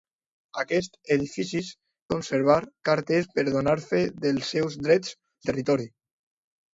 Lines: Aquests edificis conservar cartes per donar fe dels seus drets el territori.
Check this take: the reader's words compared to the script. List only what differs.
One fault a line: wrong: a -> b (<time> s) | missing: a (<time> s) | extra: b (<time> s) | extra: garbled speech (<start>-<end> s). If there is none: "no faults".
no faults